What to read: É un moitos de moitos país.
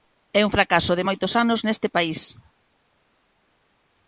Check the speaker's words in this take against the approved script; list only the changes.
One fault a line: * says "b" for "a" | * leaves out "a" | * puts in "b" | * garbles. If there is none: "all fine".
* says "fracaso" for "moitos"
* puts in "anos neste"